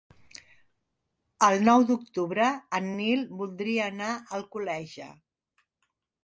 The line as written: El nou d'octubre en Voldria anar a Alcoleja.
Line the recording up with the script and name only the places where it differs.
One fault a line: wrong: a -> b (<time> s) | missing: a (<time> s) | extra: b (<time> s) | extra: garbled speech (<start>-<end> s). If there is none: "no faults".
extra: Nil (3.0 s)